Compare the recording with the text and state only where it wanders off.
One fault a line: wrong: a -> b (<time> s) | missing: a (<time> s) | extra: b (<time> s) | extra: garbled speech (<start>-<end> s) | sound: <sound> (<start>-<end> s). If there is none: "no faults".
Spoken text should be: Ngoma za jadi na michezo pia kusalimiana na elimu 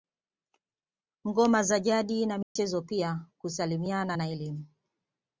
sound: dropout (2.4-2.6 s)